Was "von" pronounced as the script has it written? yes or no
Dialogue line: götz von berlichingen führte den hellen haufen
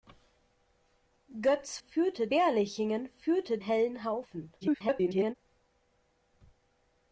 no